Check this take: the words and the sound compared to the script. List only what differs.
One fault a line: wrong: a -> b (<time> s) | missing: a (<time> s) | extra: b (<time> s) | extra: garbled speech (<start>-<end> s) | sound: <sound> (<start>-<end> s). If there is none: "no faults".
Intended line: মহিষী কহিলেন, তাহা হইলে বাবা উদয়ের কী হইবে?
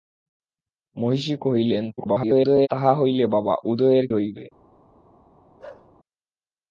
extra: garbled speech (2.0-2.7 s)
missing: কী (4.1 s)
sound: bark (5.6-5.9 s)